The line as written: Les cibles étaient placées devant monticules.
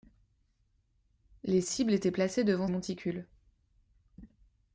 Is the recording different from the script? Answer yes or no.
no